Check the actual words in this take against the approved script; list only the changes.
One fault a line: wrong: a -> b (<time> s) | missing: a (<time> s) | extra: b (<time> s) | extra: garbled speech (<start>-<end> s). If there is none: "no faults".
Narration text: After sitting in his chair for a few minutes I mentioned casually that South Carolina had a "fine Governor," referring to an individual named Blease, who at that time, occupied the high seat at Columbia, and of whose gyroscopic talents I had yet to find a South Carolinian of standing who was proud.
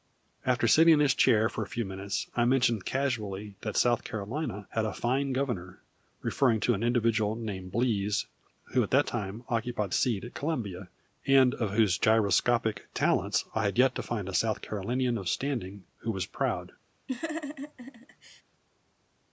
missing: the high (9.9 s)